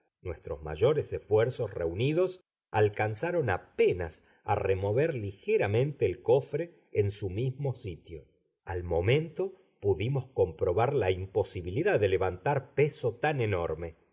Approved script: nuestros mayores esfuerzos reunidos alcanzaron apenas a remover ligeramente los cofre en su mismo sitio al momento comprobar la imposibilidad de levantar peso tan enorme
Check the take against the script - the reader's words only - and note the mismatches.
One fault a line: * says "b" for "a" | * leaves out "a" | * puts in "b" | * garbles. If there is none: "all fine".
* says "el" for "los"
* puts in "pudimos"